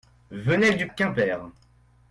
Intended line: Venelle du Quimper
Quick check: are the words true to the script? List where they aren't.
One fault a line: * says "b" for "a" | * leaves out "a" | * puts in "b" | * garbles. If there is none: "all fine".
all fine